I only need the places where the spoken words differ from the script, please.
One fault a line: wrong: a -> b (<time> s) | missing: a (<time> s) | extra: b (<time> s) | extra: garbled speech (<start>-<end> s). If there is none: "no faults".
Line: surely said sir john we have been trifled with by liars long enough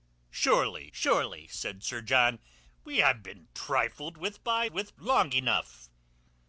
extra: surely (0.9 s)
wrong: liars -> with (4.7 s)